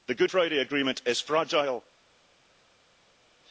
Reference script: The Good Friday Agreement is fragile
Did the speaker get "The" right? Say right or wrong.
right